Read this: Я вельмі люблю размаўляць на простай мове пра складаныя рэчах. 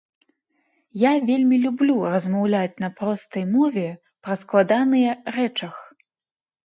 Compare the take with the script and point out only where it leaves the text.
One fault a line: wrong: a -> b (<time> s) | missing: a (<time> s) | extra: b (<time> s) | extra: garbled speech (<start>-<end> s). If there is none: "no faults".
no faults